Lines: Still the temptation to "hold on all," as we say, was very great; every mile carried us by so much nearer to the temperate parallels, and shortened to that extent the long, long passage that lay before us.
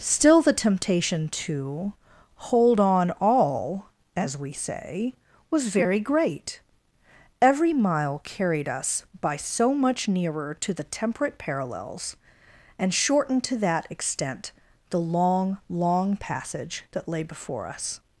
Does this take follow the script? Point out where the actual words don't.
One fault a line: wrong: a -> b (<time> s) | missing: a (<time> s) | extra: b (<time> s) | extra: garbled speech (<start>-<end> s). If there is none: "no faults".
no faults